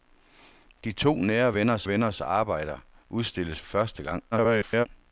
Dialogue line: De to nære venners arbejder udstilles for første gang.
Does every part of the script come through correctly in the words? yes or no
no